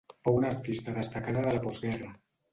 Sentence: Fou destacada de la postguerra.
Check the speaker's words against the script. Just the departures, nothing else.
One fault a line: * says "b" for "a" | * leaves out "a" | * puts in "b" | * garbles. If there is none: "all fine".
* puts in "una artista"